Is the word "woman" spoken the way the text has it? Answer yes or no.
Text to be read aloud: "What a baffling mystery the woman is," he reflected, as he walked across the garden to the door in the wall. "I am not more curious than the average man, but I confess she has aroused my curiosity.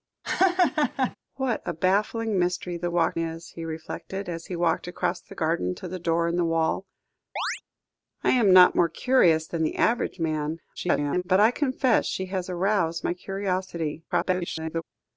no